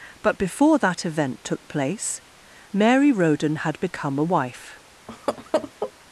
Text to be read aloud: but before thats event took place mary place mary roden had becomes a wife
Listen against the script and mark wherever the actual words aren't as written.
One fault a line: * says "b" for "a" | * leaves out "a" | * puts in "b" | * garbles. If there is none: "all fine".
* says "that" for "thats"
* leaves out "place mary"
* says "become" for "becomes"